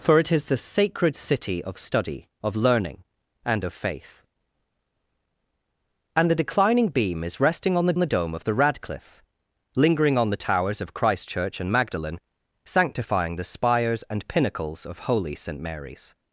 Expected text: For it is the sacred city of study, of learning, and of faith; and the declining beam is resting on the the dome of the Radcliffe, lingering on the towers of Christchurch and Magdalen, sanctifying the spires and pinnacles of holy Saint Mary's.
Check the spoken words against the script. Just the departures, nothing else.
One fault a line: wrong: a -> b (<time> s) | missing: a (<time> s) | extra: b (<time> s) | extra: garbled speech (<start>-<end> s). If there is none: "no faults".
no faults